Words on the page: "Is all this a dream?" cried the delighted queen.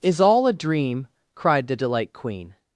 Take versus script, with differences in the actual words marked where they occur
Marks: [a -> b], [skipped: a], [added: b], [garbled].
"Is all [skipped: this] a dream?" cried the [delighted -> delight] queen.